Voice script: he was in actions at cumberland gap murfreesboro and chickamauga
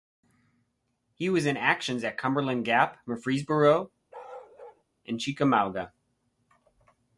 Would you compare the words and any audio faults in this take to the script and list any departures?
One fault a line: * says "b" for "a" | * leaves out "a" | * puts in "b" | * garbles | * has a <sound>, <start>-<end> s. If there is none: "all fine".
* has a bark, 4.1-4.8 s